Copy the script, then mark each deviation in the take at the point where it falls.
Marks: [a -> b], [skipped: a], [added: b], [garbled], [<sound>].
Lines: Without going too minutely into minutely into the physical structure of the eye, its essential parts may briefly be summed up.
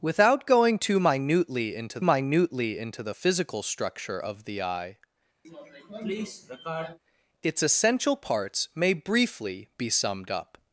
Without going too minutely into minutely into the physical structure of the eye, [sniff] its essential parts may briefly be summed up.